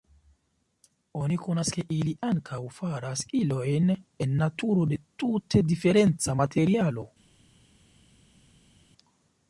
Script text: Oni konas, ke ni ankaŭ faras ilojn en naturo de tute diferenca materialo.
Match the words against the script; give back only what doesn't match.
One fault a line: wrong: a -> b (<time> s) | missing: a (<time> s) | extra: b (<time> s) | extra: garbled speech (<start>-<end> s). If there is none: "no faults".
wrong: ni -> ili (2.0 s)